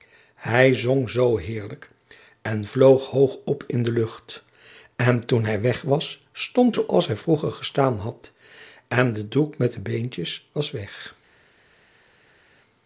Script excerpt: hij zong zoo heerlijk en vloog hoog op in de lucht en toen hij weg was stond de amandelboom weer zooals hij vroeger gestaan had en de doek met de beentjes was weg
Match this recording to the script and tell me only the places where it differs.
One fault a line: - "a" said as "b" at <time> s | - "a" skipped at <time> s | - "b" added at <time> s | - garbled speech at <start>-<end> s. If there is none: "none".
- "de amandelboom weer" skipped at 6.8 s